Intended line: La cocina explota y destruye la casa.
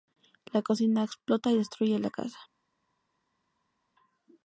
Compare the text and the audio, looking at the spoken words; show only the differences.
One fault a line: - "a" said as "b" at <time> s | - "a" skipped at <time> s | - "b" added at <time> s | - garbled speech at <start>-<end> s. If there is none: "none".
none